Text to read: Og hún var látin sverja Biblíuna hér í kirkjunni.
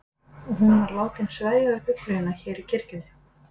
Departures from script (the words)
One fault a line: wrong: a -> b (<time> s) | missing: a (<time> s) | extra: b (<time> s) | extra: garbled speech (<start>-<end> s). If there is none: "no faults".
extra: við (1.7 s)